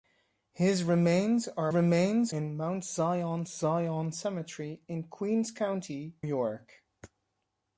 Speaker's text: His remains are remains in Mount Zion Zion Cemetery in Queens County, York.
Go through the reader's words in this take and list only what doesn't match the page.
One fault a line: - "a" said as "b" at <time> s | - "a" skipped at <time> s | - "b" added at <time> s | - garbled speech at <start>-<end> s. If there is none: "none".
none